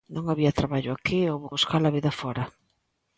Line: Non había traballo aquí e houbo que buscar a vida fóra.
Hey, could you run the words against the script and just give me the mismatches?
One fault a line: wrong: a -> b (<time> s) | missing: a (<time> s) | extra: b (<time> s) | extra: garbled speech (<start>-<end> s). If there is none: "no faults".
missing: que (1.5 s)